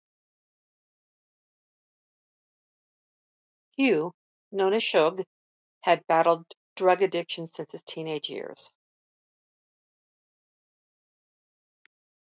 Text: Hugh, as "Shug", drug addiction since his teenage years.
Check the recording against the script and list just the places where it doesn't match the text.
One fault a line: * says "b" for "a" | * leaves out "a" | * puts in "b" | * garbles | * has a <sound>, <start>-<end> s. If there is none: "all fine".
* puts in "known"
* puts in "had battled"